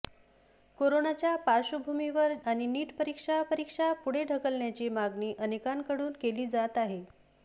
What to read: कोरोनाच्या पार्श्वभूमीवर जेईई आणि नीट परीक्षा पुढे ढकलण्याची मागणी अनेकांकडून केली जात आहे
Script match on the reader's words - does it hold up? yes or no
no